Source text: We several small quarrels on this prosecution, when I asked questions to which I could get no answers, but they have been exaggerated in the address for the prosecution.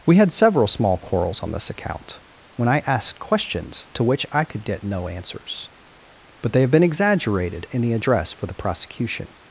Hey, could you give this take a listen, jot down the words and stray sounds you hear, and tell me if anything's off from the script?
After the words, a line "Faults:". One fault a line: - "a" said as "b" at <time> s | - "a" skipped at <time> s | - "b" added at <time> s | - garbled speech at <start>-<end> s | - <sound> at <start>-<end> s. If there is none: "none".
We had several small quarrels on this account, when I asked questions to which I could get no answers, but they have been exaggerated in the address for the prosecution.
Faults:
- "had" added at 0.1 s
- "prosecution" said as "account" at 1.7 s